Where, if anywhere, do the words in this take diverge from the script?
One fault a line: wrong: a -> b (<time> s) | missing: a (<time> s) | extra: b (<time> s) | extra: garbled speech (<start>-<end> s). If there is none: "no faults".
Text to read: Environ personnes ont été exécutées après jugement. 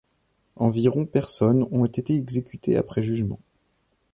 no faults